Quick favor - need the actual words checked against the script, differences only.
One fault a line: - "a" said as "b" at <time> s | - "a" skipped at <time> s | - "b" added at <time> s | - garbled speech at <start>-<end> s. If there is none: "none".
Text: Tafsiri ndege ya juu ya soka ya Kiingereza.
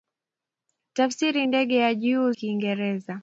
- "ya soka ya" skipped at 2.3 s